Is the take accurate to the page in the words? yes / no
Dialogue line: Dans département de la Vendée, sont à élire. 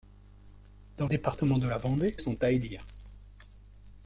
yes